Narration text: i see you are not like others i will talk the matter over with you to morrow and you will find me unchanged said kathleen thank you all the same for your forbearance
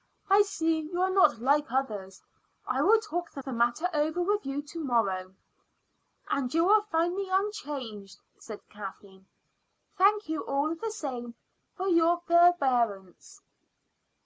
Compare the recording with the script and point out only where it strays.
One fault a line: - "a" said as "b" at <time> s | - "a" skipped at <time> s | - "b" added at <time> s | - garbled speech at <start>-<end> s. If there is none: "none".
- "the" added at 3.4 s